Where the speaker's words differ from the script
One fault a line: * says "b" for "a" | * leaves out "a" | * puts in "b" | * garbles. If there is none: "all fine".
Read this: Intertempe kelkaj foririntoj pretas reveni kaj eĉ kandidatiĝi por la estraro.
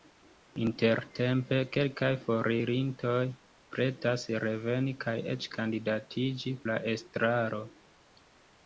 * leaves out "por"